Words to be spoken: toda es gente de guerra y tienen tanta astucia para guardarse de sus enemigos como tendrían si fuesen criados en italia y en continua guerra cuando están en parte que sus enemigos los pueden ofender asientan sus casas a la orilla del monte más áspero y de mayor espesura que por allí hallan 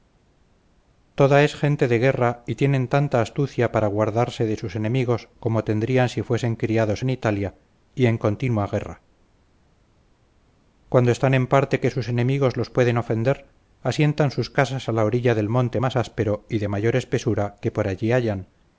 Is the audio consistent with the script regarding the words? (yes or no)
yes